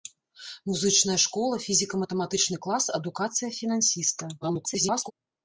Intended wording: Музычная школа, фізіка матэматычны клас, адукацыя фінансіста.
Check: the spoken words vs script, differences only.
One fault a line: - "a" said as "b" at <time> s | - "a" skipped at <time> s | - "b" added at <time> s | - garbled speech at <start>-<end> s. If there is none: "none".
- garbled speech at 4.4-5.1 s